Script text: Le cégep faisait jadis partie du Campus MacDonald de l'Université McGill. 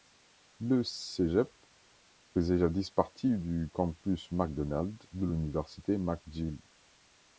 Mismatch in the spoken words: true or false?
false